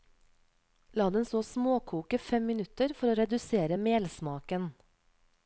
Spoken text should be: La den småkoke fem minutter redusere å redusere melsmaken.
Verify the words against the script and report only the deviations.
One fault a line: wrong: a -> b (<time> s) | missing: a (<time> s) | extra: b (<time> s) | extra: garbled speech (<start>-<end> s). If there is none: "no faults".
extra: så (1.2 s)
wrong: redusere -> for (3.0 s)